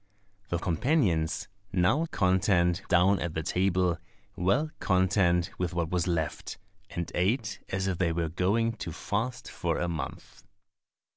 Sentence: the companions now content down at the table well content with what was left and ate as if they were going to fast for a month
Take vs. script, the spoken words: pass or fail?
pass